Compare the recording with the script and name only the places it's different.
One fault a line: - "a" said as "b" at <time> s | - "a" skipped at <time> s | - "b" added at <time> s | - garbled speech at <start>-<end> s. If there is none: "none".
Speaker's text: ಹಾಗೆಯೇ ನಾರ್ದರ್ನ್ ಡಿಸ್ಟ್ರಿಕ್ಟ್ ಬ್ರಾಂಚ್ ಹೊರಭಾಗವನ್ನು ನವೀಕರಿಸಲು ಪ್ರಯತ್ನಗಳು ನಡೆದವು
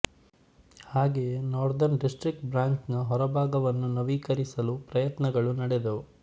- "ನ" added at 2.9 s